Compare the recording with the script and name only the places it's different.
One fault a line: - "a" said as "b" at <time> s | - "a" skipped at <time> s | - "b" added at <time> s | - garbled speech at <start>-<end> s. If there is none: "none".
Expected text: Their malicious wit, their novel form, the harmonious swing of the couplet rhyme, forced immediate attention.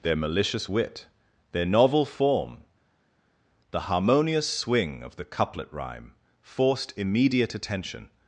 none